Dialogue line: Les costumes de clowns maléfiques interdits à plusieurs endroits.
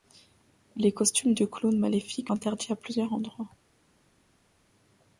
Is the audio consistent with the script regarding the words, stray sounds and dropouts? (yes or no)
yes